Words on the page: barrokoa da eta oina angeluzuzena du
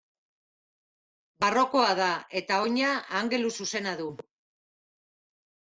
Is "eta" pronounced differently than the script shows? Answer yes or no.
no